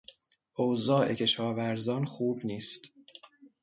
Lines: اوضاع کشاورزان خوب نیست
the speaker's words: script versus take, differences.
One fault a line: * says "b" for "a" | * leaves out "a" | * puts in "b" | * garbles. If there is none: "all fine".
all fine